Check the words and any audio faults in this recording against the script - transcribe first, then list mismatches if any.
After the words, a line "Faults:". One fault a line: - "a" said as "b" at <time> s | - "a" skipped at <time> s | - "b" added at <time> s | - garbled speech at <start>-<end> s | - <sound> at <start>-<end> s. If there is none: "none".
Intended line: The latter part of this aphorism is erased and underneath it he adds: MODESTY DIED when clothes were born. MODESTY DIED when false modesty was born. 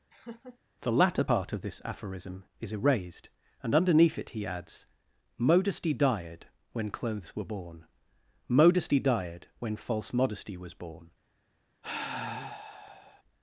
The latter part of this aphorism is erased and underneath it he adds: MODESTY DIED when clothes were born. MODESTY DIED when false modesty was born.
Faults:
- laugh at 0.1-0.6 s
- sigh at 11.8-13.2 s